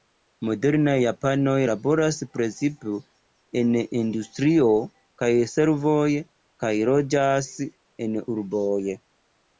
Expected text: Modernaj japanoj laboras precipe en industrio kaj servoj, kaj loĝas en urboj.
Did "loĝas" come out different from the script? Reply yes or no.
no